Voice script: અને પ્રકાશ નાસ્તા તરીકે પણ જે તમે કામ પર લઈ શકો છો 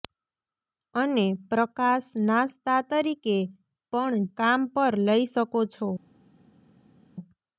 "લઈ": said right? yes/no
yes